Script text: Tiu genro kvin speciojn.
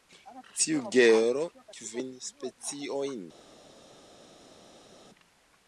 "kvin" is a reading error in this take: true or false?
false